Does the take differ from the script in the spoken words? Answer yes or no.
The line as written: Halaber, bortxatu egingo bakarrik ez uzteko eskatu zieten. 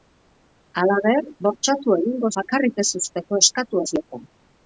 no